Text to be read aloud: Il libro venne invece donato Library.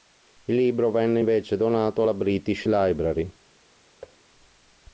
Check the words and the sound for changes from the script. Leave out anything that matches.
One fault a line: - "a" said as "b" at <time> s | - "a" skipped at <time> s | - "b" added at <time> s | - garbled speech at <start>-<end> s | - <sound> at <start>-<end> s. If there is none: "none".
- "alla British" added at 2.0 s
- thud at 4.0-4.2 s